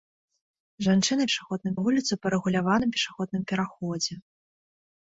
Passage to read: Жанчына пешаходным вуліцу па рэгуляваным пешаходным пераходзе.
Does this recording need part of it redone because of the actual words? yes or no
no